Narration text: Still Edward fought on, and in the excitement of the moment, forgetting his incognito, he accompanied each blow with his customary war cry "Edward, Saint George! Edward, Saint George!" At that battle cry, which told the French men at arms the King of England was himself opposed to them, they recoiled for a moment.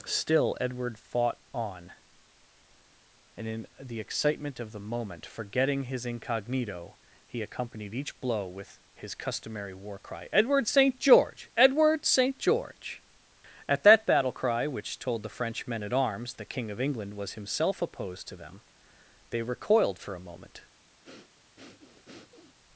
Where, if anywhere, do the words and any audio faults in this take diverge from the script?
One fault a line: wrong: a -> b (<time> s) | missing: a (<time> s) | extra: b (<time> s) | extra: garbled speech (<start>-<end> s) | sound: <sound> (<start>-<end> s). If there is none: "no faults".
sound: breath (21.0-22.6 s)